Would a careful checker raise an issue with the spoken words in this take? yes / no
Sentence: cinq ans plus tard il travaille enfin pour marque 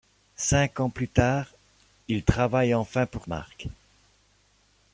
no